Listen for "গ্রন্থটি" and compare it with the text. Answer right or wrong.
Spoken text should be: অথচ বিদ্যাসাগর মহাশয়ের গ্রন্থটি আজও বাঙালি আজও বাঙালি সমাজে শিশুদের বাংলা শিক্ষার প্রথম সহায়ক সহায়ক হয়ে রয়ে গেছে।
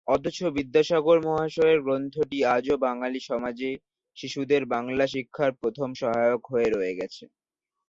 right